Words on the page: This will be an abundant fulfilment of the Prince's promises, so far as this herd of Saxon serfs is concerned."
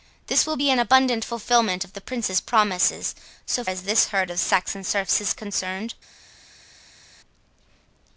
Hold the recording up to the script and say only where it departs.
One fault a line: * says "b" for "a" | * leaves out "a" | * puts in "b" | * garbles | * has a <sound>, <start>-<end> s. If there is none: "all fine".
* leaves out "far"